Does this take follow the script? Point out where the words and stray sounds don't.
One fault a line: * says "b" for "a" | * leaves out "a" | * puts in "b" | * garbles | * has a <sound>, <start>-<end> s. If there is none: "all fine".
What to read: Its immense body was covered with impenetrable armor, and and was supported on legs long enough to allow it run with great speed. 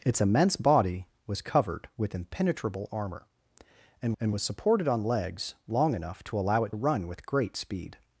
all fine